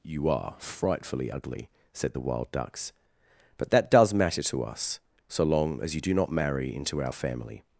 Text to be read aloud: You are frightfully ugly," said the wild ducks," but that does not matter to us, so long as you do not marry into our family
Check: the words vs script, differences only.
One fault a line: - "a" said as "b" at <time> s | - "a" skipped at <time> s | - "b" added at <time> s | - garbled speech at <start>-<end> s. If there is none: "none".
- "not" skipped at 4.1 s